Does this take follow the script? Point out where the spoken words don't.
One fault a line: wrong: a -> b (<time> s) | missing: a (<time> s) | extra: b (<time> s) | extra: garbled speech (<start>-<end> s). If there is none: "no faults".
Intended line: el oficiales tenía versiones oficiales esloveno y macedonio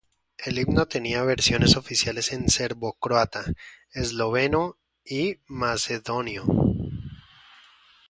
wrong: oficiales -> himno (0.6 s)
extra: en serbocroata (2.3 s)